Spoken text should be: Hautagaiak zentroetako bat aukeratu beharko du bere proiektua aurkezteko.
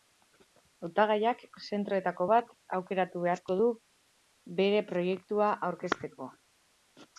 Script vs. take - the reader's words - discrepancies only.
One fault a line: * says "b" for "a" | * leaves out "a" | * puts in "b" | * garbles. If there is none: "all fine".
all fine